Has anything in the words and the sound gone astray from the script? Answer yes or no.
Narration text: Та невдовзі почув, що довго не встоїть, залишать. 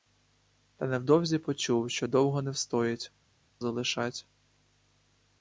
no